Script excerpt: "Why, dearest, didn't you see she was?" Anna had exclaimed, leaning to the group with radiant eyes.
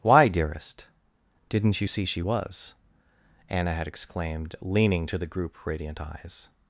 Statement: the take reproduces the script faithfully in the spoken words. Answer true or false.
false